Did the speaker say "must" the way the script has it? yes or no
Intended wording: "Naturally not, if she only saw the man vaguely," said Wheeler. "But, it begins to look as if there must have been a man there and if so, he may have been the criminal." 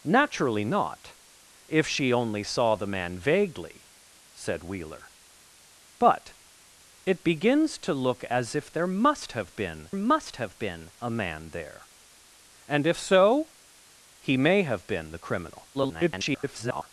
yes